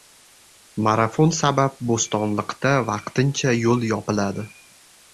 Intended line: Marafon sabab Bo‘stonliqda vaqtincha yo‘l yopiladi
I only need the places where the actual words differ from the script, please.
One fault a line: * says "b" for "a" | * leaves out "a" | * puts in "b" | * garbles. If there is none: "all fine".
all fine